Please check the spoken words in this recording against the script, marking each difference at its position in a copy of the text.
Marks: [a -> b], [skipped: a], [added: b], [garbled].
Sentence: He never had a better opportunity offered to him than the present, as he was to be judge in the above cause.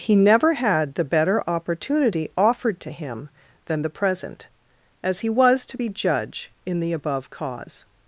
He never had [a -> the] better opportunity offered to him than the present, as he was to be judge in the above cause.